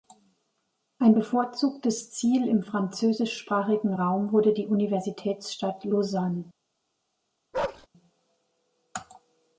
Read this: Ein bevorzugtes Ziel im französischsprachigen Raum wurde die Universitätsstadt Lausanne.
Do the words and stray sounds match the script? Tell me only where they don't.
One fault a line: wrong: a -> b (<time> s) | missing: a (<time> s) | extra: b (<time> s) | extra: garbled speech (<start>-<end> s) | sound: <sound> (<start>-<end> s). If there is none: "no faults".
sound: bark (7.5-7.9 s)